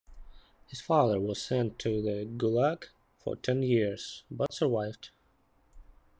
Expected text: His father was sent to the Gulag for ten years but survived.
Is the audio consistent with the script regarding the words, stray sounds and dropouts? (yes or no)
no